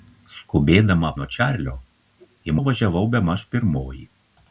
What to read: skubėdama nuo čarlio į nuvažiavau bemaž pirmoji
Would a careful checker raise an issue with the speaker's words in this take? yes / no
no